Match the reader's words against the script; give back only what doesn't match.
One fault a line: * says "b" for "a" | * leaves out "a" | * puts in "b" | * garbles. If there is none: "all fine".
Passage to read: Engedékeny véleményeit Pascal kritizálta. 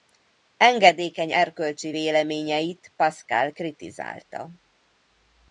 * puts in "erkölcsi"